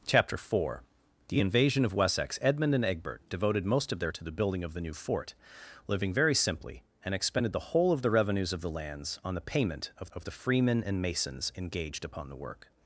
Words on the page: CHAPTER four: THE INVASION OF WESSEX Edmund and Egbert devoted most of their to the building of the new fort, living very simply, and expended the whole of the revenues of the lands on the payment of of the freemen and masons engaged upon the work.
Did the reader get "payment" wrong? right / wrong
right